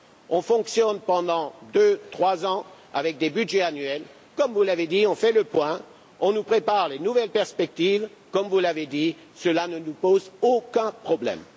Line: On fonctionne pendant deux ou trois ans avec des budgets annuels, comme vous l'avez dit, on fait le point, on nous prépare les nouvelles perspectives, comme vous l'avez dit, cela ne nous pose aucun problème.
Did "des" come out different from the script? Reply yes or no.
no